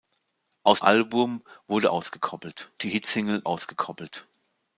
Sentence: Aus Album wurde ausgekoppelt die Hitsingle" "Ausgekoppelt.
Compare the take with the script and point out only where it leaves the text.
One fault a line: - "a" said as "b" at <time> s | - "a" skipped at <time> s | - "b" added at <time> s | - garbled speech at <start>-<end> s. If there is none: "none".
none